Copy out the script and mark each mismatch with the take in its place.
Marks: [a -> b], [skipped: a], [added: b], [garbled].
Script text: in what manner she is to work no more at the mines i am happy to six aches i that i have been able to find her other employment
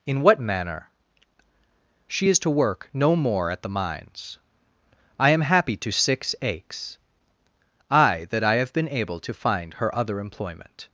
in what manner she is to work no more at the mines i am happy to six aches i that i have been able to find her other employment